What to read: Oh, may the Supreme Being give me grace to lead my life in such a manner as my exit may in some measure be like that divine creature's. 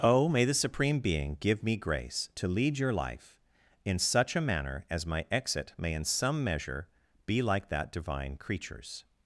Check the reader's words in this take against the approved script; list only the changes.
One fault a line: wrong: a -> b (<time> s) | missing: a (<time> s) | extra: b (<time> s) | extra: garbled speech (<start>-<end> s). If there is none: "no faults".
wrong: my -> your (2.8 s)